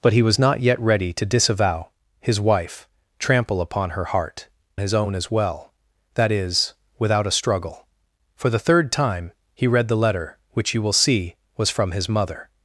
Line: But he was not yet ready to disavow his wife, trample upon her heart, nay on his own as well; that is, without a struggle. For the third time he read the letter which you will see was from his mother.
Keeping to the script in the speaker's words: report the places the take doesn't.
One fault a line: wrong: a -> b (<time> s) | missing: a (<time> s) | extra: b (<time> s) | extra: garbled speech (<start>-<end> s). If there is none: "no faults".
missing: nay on (4.5 s)